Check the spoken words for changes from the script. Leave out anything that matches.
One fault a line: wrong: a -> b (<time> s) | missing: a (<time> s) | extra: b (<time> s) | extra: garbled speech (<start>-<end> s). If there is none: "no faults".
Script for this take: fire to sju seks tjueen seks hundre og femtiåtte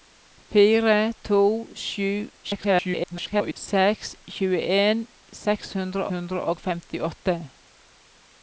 extra: garbled speech (2.4-3.5 s)
extra: hundre (6.1 s)